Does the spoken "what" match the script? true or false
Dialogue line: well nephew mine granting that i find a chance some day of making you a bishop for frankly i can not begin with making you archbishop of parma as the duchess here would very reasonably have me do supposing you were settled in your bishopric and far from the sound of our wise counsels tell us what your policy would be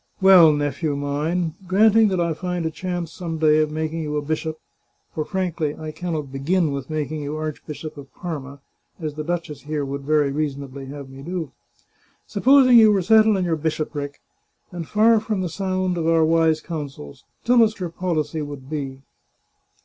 false